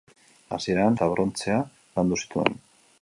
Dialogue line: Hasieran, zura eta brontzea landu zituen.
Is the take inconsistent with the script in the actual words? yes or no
yes